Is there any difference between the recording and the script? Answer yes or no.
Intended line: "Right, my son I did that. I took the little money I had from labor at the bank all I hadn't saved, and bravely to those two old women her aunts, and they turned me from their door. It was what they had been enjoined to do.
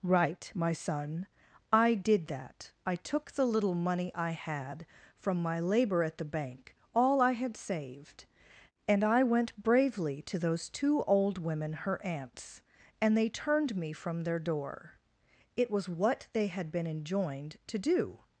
yes